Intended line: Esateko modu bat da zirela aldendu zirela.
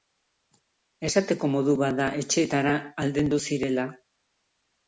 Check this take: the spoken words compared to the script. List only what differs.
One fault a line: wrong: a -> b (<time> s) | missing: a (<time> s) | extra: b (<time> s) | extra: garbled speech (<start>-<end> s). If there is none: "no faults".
wrong: zirela -> etxeetara (2.2 s)